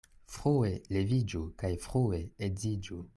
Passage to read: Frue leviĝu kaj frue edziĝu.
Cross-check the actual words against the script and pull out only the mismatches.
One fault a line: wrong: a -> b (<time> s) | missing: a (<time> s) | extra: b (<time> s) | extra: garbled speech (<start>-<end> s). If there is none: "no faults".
no faults